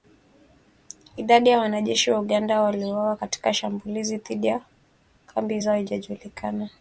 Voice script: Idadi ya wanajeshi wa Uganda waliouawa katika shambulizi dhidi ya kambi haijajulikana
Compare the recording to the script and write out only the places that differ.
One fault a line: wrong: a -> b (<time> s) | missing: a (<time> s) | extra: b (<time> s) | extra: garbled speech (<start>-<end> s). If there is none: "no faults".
extra: zao (5.6 s)